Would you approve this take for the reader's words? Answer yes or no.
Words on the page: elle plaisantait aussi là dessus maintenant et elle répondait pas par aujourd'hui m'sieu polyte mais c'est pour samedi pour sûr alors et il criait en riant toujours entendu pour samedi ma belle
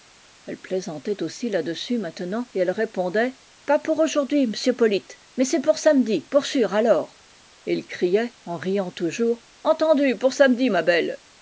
no